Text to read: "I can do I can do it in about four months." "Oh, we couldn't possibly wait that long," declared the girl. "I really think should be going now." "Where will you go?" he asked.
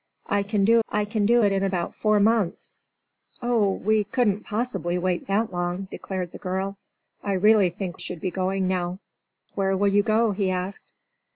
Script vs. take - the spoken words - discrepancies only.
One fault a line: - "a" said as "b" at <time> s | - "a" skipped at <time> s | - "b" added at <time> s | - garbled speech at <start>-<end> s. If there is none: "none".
none